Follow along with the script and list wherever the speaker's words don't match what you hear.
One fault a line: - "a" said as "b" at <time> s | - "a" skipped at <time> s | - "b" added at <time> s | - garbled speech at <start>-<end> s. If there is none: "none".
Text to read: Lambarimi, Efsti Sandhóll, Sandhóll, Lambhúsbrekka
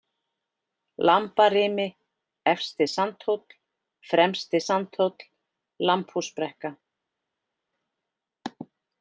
- "Fremsti" added at 4.1 s